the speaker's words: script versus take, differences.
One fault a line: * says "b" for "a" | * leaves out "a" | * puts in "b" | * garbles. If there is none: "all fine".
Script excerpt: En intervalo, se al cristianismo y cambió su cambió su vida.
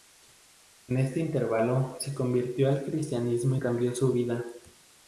* puts in "este"
* puts in "convirtió"
* leaves out "cambió su"